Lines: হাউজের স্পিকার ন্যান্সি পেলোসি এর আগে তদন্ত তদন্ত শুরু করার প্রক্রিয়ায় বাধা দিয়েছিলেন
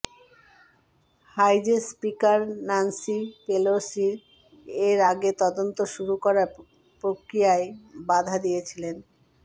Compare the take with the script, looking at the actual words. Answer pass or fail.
fail